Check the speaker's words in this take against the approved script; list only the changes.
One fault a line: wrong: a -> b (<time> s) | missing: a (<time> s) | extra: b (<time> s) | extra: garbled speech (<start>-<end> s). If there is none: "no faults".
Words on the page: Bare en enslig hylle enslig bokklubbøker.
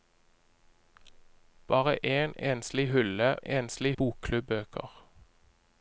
no faults